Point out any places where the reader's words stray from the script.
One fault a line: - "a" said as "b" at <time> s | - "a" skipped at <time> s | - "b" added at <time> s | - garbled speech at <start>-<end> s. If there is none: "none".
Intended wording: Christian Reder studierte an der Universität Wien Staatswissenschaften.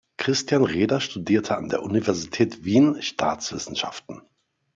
none